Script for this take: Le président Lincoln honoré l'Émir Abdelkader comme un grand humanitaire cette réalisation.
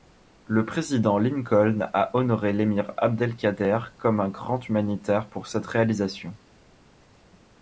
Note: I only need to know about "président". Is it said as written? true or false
true